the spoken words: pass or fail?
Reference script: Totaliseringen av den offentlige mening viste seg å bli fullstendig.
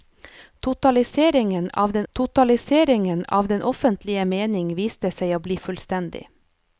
fail